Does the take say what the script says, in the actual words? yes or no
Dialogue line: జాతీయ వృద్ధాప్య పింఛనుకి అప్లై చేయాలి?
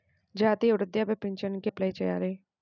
yes